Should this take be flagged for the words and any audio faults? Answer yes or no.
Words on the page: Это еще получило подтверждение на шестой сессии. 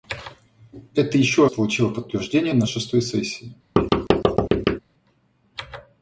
yes